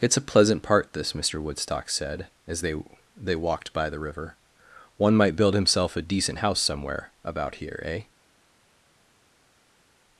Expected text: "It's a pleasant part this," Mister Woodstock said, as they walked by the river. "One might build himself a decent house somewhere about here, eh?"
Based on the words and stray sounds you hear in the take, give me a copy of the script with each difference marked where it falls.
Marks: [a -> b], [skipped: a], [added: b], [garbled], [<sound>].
"It's a pleasant part this," Mister Woodstock said, as they [added: they] walked by the river. "One might build himself a decent house somewhere about here, eh?"